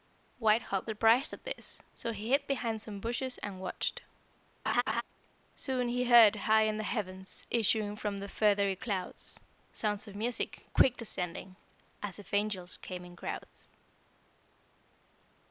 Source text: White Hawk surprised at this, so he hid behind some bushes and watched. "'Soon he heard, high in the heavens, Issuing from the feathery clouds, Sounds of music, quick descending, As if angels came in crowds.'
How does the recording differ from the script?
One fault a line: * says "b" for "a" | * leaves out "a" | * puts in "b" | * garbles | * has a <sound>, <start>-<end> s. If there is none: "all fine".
* has a laugh, 4.7-5.0 s